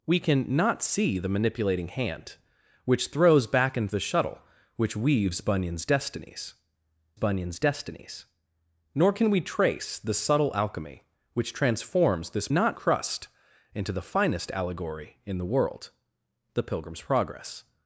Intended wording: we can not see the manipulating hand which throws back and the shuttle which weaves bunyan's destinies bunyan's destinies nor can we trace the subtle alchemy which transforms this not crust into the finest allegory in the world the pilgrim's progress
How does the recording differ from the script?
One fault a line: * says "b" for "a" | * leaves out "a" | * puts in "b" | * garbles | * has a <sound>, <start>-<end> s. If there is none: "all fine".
all fine